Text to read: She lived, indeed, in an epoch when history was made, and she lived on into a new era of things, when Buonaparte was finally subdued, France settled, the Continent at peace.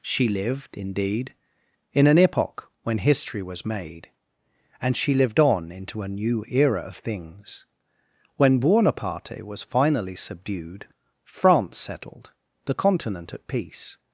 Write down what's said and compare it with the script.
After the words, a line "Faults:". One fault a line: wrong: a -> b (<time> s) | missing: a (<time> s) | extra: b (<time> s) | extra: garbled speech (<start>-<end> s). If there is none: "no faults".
She lived, indeed, in an epoch when history was made, and she lived on into a new era of things, when Buonaparte was finally subdued, France settled, the Continent at peace.
Faults:
no faults